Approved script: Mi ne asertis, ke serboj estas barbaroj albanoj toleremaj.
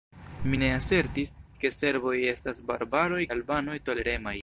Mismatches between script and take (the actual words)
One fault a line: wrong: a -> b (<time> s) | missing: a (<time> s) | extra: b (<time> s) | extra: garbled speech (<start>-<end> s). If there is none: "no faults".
no faults